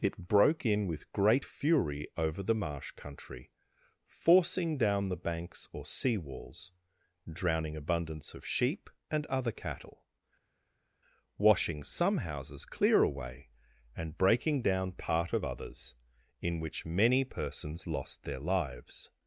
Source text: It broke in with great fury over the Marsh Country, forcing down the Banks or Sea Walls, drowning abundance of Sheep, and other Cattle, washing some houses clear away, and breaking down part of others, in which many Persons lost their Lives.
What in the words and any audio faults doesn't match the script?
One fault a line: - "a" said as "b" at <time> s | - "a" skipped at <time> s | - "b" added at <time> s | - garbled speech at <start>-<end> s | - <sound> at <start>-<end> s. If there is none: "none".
none